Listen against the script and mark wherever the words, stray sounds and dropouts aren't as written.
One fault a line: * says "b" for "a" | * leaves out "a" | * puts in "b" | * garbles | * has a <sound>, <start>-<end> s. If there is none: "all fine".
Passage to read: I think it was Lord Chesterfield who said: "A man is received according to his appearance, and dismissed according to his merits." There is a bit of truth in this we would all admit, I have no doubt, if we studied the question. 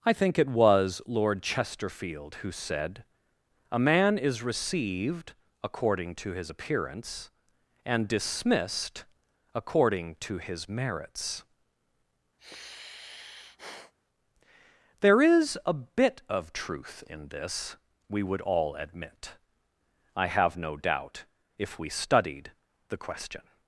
* has a sigh, 12.4-13.9 s